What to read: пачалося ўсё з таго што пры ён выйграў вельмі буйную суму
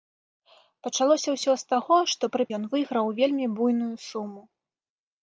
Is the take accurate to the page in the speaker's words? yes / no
yes